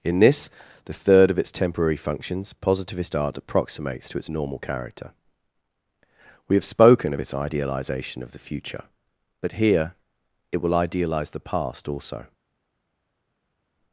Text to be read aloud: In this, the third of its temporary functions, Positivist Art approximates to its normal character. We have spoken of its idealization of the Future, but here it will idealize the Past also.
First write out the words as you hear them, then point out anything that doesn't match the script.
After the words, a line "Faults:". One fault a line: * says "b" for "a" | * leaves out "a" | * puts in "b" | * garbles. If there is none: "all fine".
In this, the third of its temporary functions, Positivist Art approximates to its normal character. We have spoken of its idealization of the Future, but here it will idealize the Past also.
Faults:
all fine